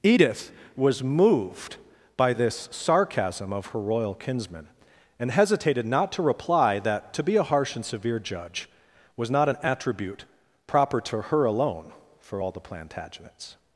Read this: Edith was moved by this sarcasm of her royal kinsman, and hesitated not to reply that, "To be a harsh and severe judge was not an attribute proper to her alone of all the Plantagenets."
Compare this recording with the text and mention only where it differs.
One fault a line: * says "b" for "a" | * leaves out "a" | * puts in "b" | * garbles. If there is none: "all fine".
* says "for" for "of"